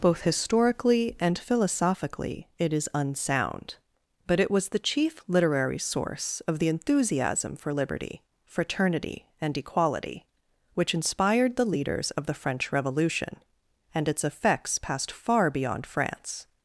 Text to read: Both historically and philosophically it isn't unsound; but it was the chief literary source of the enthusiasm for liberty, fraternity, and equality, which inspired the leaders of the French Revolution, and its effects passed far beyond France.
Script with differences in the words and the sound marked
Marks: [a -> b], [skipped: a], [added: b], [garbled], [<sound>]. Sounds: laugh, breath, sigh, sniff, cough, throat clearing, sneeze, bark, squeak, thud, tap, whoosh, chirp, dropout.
Both historically and philosophically it [isn't -> is] unsound; but it was the chief literary source of the enthusiasm for liberty, fraternity, and equality, which inspired the leaders of the French Revolution, and its effects passed far beyond France.